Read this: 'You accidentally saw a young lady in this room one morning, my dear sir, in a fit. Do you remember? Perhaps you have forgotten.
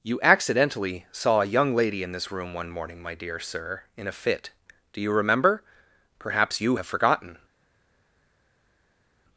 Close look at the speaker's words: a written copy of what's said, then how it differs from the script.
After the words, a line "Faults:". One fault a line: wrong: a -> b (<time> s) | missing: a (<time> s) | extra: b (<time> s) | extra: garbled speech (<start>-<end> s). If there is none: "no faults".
'You accidentally saw a young lady in this room one morning, my dear sir, in a fit. Do you remember? Perhaps you have forgotten.
Faults:
no faults